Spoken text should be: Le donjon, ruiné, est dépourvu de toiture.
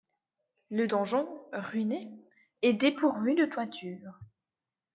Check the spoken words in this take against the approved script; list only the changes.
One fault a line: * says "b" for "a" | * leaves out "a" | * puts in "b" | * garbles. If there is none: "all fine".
all fine